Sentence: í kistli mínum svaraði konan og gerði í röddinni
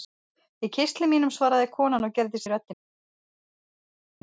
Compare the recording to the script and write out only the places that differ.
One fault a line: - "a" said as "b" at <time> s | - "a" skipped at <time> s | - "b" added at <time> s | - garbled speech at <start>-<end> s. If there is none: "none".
none